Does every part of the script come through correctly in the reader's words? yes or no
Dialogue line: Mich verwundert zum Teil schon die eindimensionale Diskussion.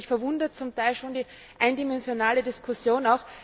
yes